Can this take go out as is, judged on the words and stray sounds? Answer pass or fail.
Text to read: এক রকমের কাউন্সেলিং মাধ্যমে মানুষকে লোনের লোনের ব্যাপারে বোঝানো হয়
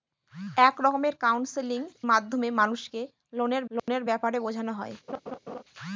fail